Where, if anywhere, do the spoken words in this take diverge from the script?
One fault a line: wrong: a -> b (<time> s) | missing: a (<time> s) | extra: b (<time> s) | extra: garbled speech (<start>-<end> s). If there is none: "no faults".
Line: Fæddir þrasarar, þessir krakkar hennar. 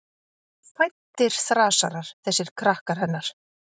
no faults